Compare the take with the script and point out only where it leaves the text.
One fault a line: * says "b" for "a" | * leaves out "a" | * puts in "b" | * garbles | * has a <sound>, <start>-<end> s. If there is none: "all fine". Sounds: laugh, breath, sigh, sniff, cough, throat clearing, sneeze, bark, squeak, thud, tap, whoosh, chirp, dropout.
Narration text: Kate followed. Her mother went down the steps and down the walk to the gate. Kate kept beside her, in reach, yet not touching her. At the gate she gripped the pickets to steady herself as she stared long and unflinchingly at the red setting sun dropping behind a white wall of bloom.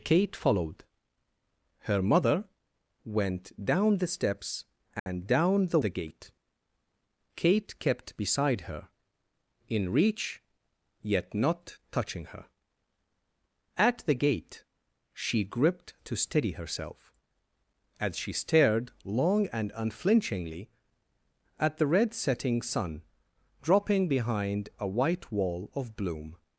* has a dropout, 5.0-5.1 s
* leaves out "walk to"
* leaves out "the pickets"